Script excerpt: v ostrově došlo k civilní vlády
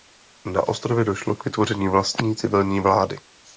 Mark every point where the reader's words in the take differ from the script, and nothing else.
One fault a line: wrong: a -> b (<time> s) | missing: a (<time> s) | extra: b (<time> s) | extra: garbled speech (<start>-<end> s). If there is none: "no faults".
wrong: v -> na (0.5 s)
extra: vytvoření vlastní (1.4 s)